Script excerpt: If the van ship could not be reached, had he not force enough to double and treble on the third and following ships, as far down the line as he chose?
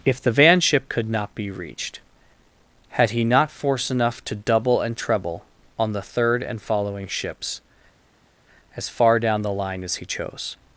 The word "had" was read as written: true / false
true